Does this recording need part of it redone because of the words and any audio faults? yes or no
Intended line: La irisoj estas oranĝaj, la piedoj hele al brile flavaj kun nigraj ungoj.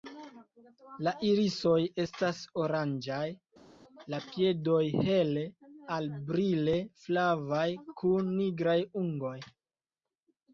no